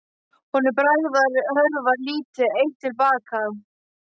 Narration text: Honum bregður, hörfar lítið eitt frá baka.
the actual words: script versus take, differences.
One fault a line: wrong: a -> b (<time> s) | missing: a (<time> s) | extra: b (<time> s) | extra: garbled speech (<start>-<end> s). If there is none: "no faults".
wrong: frá -> til (2.9 s)